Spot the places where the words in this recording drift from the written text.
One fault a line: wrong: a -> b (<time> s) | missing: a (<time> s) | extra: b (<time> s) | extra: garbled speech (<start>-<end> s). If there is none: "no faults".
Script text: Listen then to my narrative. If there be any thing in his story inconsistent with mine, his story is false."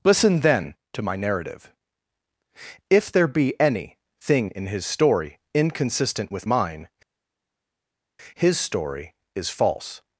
no faults